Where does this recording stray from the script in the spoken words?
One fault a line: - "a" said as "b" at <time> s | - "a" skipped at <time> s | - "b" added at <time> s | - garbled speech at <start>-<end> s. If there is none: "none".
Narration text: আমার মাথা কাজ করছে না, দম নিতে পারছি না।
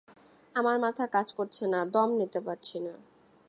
none